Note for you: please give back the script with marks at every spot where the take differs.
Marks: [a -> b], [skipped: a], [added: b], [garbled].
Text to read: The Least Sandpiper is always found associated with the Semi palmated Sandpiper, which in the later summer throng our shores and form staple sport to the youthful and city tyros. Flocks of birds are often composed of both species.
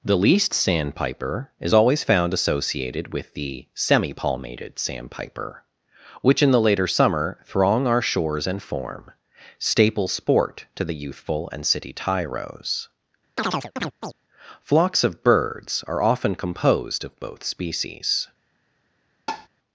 The Least Sandpiper is always found associated with the Semi palmated Sandpiper, which in the later summer throng our shores and form staple sport to the youthful and city tyros. Flocks of birds are often composed of both species.